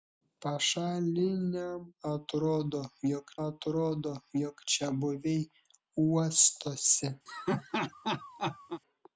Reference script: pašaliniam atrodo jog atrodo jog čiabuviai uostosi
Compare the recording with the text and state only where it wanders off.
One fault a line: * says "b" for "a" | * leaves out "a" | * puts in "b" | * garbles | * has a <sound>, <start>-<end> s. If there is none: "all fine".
* has a laugh, 7.3-8.8 s